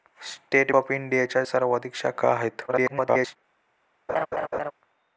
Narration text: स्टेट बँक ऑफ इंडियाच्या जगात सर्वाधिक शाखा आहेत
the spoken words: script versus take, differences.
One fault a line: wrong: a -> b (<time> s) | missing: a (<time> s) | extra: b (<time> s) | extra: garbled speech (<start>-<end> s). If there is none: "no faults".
missing: बँक (0.7 s)
missing: जगात (1.4 s)
extra: garbled speech (2.7-3.4 s)